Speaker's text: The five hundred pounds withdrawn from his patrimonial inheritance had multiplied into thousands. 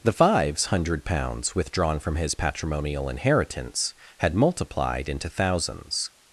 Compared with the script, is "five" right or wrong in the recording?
wrong